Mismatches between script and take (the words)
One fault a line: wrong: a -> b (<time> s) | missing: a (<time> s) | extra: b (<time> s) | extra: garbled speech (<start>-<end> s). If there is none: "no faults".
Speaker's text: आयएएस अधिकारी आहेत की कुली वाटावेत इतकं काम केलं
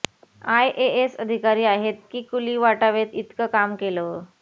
no faults